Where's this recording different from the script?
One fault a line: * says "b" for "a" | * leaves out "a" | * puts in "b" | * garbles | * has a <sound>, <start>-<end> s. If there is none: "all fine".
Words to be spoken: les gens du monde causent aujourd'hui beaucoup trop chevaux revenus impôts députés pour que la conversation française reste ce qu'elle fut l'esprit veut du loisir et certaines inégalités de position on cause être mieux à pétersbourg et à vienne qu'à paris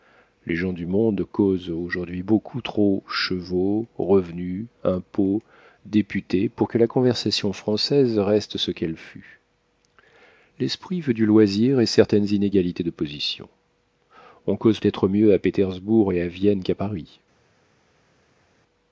all fine